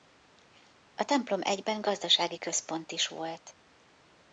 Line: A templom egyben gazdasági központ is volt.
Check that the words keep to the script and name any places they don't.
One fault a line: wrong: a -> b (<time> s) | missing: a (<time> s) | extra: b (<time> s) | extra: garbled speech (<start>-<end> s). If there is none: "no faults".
no faults